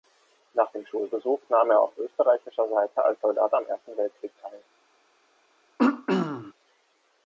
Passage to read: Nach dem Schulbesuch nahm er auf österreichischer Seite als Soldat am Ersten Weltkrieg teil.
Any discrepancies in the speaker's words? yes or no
no